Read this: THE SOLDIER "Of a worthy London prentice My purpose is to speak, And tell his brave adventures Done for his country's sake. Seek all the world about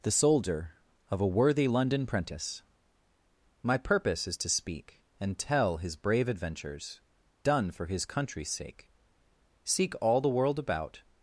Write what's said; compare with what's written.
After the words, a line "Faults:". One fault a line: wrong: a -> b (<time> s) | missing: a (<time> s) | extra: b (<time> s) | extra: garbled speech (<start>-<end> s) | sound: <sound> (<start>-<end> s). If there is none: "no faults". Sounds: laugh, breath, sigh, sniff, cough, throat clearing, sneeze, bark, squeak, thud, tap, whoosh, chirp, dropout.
THE SOLDIER "Of a worthy London prentice My purpose is to speak, And tell his brave adventures Done for his country's sake. Seek all the world about
Faults:
no faults